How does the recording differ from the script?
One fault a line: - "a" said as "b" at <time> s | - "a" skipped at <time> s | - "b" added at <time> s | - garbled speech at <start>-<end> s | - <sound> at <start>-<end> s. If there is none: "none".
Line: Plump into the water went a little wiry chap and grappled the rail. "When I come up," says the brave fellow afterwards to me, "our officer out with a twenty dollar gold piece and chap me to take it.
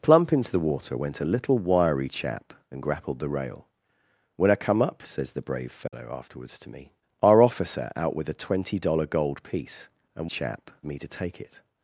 - dropout at 5.9-5.9 s